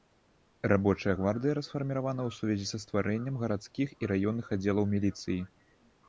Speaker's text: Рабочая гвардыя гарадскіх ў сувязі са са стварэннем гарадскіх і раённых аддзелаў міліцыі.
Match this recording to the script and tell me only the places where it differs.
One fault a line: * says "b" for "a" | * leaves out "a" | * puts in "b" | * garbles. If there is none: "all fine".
* says "расфарміравана" for "гарадскіх"
* leaves out "са"